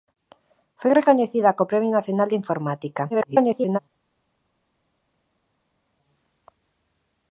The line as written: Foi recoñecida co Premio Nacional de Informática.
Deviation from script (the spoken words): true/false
true